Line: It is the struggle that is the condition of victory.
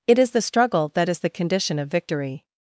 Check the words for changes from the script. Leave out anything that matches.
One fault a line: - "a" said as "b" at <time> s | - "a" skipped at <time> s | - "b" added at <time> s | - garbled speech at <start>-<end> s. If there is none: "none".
none